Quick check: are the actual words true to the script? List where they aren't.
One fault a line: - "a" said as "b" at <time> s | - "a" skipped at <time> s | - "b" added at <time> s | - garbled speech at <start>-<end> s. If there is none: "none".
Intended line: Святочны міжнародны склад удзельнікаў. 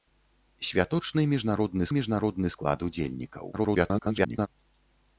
- "міжнародны" added at 2.0 s
- garbled speech at 3.5-4.5 s